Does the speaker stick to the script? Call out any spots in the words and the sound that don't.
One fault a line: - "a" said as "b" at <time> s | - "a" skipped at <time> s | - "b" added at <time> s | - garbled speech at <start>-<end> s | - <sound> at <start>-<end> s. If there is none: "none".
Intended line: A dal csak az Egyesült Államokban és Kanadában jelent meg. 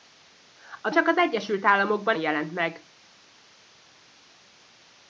- "dal" skipped at 0.9 s
- "és Kanadában" skipped at 2.2 s